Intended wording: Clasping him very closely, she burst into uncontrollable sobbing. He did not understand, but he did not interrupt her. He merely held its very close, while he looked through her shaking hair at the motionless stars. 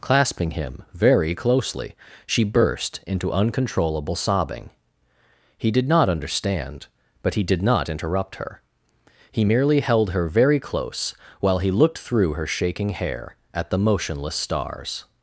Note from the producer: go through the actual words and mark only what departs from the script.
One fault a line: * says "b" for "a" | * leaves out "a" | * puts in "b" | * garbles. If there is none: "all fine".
* says "her" for "its"